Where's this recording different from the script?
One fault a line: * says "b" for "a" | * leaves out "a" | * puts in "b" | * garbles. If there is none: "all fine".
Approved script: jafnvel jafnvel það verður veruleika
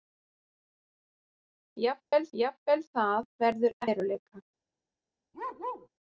all fine